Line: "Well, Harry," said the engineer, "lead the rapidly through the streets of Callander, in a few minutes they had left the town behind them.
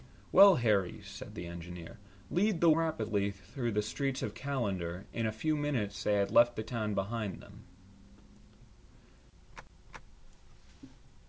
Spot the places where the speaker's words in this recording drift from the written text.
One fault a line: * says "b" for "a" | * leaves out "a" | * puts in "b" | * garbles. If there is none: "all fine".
all fine